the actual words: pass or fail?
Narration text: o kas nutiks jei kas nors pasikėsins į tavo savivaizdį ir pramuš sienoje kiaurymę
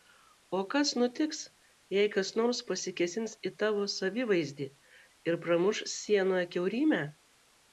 pass